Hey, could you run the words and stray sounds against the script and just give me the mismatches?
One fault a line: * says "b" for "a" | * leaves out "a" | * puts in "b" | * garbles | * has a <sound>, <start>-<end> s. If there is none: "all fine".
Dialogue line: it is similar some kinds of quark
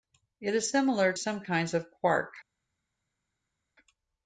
all fine